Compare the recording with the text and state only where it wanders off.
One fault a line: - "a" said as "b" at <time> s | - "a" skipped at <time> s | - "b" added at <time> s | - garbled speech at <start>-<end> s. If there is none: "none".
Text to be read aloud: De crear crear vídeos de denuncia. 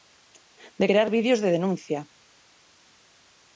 - "crear" skipped at 1.1 s